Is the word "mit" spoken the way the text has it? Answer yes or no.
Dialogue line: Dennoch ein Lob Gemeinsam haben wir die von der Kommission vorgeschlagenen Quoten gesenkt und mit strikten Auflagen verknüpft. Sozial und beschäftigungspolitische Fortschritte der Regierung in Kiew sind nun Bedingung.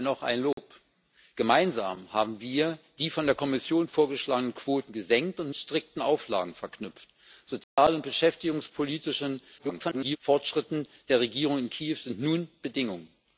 no